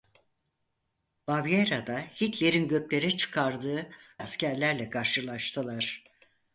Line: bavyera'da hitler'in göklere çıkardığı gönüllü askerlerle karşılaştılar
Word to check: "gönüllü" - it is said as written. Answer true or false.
false